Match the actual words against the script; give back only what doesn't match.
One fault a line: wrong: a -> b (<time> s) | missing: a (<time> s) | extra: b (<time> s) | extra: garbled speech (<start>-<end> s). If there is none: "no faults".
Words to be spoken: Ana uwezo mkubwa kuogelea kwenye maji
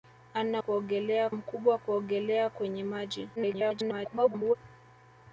wrong: uwezo -> kuogelea (0.6 s)
extra: garbled speech (3.4-4.6 s)